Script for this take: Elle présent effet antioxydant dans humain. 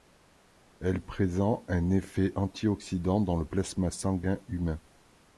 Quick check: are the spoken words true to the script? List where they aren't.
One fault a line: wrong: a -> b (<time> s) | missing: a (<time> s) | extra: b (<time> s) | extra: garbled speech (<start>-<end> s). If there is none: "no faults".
extra: un (1.7 s)
extra: le plasma sanguin (3.3 s)